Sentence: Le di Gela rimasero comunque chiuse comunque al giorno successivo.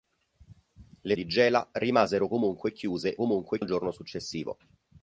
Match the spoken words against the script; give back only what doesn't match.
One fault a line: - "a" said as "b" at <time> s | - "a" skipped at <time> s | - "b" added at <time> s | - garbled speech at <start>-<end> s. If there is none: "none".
none